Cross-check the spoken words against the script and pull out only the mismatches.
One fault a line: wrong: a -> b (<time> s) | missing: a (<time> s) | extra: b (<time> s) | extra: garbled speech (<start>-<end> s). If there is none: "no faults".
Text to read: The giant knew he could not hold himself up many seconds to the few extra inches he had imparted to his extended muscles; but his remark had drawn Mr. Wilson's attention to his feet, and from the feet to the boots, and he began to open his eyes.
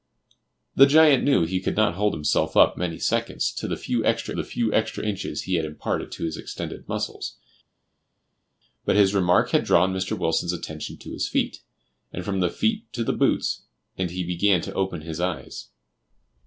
extra: the few extra (4.3 s)